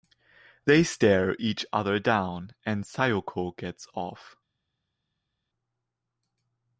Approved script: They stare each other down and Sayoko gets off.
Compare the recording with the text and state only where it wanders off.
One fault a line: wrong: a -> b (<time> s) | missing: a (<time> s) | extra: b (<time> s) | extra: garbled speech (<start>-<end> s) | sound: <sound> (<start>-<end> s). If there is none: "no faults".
no faults